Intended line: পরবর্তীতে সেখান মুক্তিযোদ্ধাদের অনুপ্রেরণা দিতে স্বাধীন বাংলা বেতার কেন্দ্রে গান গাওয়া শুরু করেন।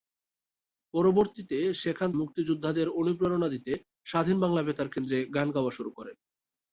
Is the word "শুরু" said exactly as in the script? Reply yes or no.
yes